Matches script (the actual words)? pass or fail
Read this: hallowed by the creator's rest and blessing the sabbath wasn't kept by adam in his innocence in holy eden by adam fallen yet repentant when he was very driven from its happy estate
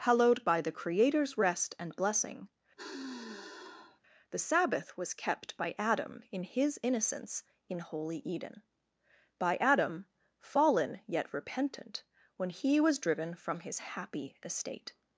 fail